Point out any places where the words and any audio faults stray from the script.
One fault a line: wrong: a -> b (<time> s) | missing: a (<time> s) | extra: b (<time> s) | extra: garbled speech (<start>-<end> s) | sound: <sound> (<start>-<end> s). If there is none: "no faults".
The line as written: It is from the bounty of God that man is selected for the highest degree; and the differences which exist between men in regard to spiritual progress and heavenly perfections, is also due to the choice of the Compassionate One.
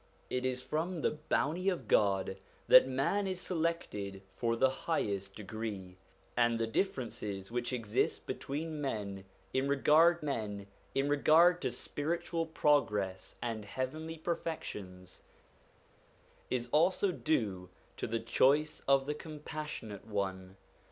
extra: men in regard (10.2 s)